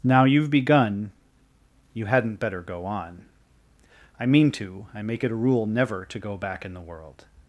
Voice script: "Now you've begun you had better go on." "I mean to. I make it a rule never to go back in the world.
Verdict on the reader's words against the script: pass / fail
fail